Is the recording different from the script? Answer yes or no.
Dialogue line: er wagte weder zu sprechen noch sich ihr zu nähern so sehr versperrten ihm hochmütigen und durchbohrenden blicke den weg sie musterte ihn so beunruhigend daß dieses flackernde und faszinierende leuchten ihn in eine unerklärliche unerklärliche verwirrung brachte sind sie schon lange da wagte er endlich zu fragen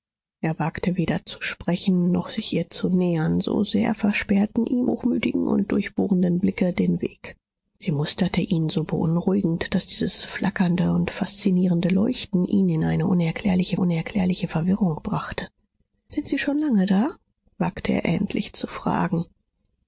no